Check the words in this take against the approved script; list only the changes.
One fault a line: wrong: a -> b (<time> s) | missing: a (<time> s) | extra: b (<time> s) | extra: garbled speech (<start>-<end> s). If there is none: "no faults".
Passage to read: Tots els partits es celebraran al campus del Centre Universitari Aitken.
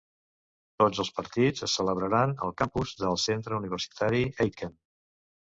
no faults